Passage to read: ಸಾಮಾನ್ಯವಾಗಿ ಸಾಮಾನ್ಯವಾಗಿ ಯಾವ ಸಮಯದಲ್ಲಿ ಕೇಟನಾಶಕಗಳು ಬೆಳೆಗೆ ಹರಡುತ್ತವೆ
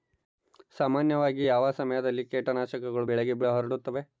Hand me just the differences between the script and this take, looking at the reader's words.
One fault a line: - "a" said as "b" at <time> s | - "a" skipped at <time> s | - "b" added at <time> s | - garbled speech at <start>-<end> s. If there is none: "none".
- "ಸಾಮಾನ್ಯವಾಗಿ" skipped at 1.5 s